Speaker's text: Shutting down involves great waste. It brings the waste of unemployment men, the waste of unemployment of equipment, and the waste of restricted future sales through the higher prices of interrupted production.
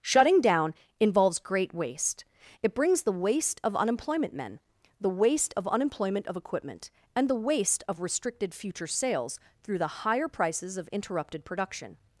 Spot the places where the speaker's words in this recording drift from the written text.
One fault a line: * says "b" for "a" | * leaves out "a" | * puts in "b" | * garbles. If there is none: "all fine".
all fine